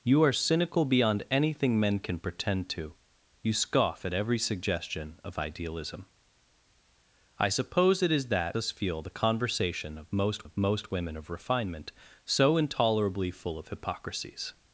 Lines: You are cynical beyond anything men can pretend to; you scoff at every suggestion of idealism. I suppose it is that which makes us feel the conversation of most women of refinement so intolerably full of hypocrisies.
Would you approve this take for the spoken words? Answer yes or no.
no